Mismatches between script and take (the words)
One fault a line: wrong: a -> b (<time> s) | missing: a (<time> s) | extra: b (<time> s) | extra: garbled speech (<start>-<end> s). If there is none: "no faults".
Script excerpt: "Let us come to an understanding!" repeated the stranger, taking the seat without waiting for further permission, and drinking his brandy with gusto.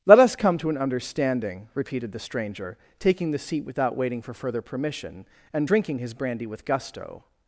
no faults